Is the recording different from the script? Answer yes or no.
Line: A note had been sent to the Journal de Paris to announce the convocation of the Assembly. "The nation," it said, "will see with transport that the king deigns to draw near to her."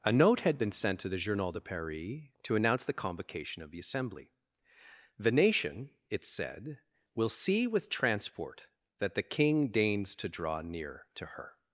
no